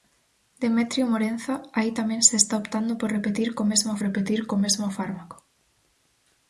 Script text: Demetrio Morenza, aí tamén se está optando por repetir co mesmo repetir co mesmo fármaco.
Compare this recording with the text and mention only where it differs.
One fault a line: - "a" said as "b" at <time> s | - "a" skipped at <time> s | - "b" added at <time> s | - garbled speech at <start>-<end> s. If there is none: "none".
none